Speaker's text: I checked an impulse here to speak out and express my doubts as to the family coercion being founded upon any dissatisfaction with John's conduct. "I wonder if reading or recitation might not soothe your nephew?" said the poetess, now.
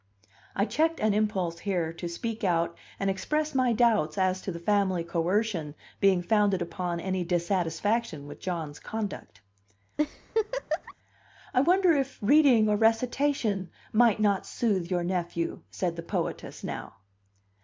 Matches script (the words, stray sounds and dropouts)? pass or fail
fail